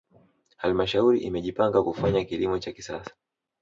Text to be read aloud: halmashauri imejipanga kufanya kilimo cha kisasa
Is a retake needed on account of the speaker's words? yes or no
no